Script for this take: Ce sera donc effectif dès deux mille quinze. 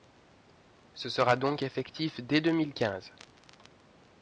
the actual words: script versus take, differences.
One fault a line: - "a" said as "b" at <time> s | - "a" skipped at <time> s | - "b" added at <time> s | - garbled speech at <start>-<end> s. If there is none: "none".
none